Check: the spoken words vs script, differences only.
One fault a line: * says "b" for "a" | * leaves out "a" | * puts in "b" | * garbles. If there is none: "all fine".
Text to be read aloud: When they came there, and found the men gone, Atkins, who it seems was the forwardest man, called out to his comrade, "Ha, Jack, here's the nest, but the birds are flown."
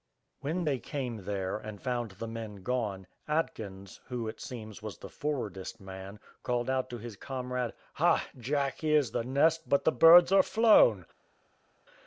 all fine